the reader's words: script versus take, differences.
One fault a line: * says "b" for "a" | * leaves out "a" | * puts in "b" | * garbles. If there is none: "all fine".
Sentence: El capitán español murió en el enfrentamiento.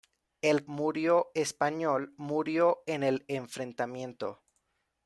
* says "murió" for "capitán"